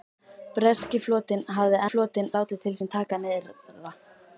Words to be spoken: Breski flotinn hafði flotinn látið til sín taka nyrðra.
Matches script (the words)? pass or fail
pass